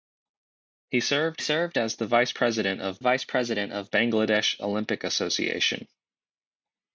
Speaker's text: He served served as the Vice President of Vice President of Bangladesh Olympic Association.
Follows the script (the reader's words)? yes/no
yes